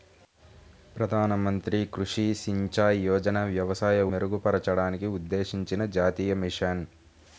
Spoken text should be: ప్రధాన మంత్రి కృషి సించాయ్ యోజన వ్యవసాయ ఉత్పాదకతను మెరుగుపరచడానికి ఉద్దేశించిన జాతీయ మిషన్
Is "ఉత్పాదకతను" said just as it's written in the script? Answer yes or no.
no